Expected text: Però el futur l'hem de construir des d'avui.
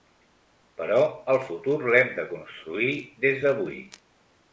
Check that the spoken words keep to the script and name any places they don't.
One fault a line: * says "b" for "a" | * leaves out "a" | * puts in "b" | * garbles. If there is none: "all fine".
all fine